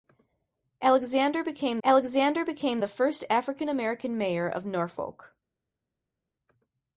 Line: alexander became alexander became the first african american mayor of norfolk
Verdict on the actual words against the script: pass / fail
pass